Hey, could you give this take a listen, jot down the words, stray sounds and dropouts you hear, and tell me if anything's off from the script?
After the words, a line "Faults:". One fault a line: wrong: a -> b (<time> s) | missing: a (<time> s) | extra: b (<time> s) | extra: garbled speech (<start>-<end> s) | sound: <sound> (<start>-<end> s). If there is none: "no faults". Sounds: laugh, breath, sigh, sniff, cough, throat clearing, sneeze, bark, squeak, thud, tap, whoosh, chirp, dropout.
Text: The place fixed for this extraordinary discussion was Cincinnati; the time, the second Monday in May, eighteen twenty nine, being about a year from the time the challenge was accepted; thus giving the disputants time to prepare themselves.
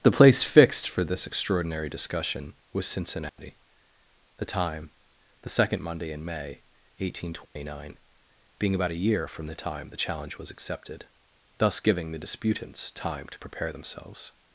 The place fixed for this extraordinary discussion was Cincinnati; the time, the second Monday in May, eighteen twenty nine, being about a year from the time the challenge was accepted; thus giving the disputants time to prepare themselves.
Faults:
sound: dropout (3.3-3.4 s)
sound: dropout (7.4-7.6 s)